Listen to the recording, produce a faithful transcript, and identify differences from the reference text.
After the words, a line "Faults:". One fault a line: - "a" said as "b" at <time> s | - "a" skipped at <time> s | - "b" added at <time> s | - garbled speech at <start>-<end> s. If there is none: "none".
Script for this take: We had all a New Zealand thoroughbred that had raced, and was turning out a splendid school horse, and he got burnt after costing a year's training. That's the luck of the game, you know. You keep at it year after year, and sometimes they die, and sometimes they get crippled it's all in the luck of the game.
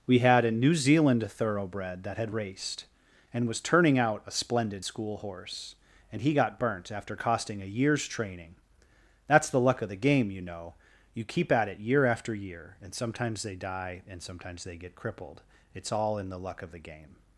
We had a New Zealand thoroughbred that had raced, and was turning out a splendid school horse, and he got burnt after costing a year's training. That's the luck of the game, you know. You keep at it year after year, and sometimes they die, and sometimes they get crippled it's all in the luck of the game.
Faults:
- "all" skipped at 0.5 s